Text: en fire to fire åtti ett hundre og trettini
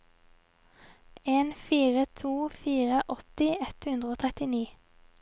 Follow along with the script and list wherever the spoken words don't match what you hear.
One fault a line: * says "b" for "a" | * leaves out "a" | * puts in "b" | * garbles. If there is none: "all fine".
all fine